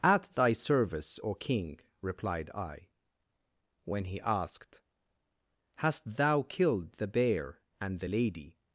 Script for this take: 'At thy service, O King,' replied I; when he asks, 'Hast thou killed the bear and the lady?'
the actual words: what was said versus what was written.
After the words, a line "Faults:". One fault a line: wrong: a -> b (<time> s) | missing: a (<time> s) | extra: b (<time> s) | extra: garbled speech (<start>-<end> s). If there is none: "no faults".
'At thy service, O King,' replied I; when he asked, 'Hast thou killed the bear and the lady?'
Faults:
wrong: asks -> asked (4.2 s)